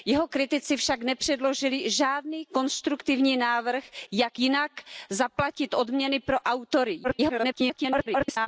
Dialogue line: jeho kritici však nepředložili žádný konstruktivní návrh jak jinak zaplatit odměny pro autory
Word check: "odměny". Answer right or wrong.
right